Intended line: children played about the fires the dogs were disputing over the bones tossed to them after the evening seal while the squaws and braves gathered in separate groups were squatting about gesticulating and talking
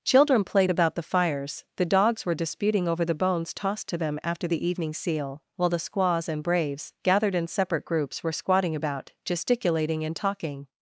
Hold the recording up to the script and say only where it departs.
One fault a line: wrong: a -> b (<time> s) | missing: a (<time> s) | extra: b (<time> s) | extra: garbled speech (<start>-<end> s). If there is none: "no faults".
no faults